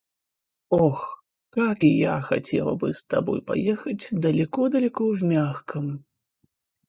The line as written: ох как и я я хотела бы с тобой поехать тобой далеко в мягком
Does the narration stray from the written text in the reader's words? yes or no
yes